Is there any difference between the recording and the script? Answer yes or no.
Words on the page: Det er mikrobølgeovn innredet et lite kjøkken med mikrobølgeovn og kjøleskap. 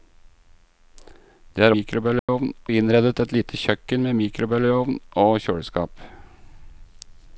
no